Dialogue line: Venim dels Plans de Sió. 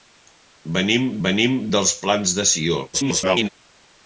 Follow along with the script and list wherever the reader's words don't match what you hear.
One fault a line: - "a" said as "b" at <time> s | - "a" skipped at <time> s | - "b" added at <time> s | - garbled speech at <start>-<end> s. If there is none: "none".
- "venim" added at 1.3 s
- garbled speech at 2.9-3.5 s